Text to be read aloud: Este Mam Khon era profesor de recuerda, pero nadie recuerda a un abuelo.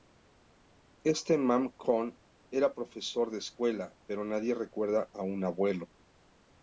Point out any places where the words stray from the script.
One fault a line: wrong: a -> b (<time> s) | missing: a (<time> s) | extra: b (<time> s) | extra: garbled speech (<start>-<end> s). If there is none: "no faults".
wrong: recuerda -> escuela (3.4 s)